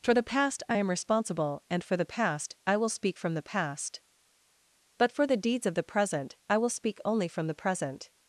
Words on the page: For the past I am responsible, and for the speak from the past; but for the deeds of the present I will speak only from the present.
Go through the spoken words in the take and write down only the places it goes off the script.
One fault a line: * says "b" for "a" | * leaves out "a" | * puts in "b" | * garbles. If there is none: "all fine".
* puts in "past I will"